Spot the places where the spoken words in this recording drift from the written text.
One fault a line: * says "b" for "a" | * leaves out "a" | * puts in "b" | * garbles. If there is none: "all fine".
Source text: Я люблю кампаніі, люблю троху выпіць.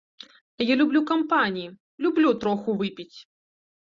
all fine